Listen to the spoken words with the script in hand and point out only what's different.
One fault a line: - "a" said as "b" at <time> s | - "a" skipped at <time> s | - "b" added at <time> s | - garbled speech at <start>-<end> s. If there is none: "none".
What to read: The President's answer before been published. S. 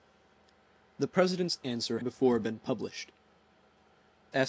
none